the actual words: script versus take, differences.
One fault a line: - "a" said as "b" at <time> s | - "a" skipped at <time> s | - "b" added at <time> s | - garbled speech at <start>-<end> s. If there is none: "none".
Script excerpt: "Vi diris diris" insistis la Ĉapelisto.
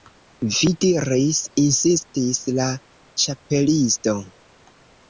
- "diris" skipped at 1.4 s